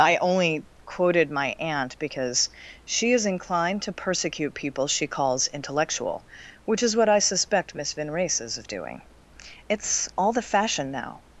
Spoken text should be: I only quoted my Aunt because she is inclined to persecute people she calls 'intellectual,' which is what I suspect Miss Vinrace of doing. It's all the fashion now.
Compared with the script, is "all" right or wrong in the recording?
right